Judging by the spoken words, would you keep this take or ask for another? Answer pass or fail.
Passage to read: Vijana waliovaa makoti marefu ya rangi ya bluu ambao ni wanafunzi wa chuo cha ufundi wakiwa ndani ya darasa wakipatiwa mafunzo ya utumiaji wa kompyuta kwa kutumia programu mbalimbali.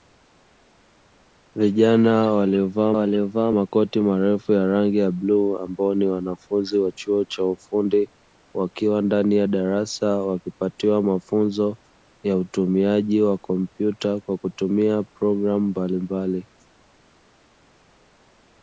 fail